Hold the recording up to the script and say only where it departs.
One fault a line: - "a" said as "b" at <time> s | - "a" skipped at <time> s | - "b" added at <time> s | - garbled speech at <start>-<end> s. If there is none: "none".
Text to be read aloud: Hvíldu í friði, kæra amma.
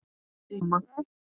- "friði kæra" skipped at 0.6 s